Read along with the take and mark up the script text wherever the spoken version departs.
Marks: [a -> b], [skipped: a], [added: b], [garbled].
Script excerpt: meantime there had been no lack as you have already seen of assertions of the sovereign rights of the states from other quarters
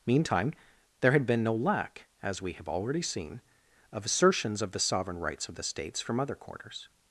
meantime there had been no lack as [you -> we] have already seen of assertions of the sovereign rights of the states from other quarters